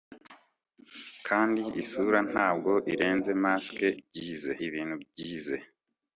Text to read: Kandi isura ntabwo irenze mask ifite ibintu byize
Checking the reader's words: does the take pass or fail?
fail